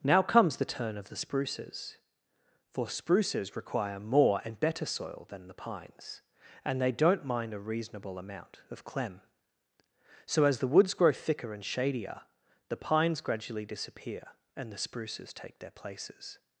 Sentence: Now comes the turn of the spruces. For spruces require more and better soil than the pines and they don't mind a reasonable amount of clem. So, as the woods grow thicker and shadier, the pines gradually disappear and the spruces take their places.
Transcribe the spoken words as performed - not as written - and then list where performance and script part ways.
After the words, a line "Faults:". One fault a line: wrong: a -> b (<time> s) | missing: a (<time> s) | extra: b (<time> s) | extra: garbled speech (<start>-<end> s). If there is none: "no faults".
Now comes the turn of the spruces. For spruces require more and better soil than the pines and they don't mind a reasonable amount of clem. So, as the woods grow thicker and shadier, the pines gradually disappear and the spruces take their places.
Faults:
no faults